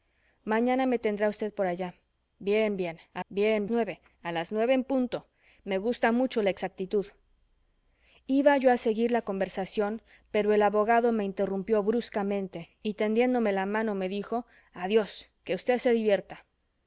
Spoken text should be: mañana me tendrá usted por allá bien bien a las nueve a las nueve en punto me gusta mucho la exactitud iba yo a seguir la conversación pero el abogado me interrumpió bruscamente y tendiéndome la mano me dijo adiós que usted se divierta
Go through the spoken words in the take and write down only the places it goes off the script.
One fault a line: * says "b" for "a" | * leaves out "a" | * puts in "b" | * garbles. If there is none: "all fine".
* says "bien" for "las"